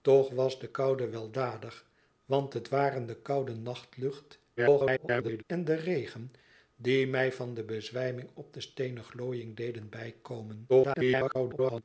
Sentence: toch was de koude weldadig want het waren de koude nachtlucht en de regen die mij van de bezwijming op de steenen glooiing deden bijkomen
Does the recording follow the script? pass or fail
fail